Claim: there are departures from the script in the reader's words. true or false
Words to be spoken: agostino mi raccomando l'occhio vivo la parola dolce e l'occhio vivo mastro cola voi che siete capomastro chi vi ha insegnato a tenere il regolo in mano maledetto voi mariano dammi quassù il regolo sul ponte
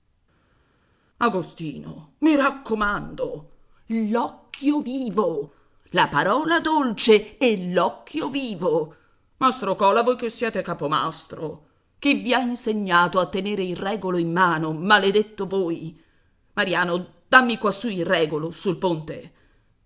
false